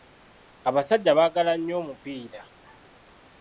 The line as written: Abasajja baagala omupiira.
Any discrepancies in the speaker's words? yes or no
yes